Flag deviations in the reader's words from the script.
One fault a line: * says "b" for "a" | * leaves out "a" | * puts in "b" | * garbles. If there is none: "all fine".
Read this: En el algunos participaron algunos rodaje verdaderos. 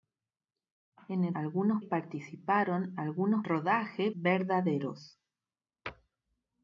all fine